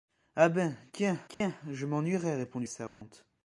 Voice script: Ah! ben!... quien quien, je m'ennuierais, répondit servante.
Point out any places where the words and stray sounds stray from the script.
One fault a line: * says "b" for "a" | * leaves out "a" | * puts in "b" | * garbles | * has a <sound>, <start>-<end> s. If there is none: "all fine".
* has a dropout, 1.3-1.4 s
* has a dropout, 2.9-3.0 s